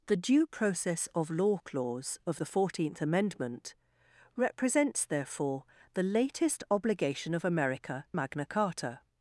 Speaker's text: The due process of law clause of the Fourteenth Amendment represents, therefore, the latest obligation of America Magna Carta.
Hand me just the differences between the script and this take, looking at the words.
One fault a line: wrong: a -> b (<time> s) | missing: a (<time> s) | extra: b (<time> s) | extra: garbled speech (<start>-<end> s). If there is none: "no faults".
no faults